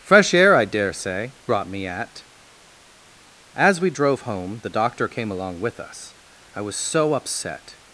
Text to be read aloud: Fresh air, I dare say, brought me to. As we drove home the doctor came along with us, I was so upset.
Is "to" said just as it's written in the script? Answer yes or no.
no